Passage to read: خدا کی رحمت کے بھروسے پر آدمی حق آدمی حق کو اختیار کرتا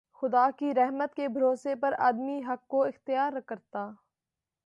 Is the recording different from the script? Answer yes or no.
yes